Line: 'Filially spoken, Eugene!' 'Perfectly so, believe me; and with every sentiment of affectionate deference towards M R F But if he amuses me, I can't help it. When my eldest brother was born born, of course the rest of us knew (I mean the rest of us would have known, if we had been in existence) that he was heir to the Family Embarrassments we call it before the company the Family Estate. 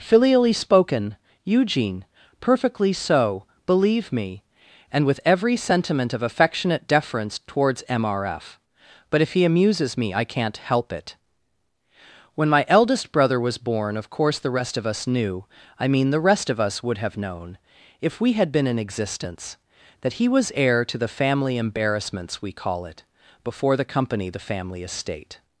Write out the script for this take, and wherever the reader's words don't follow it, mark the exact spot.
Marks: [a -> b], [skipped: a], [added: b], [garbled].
'Filially spoken, Eugene!' 'Perfectly so, believe me; and with every sentiment of affectionate deference towards M R F But if he amuses me, I can't help it. When my eldest brother was born [skipped: born,] of course the rest of us knew (I mean the rest of us would have known, if we had been in existence) that he was heir to the Family Embarrassments we call it before the company the Family Estate.